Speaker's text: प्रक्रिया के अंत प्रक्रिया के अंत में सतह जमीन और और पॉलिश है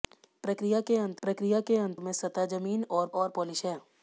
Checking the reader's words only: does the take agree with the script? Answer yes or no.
yes